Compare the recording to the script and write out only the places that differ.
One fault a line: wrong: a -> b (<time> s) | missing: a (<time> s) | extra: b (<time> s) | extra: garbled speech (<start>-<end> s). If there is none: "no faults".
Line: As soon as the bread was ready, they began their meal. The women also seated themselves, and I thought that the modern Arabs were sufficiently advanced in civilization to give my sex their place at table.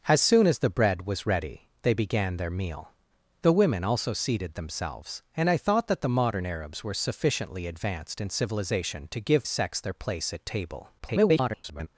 missing: my (9.5 s)
extra: garbled speech (11.0-11.9 s)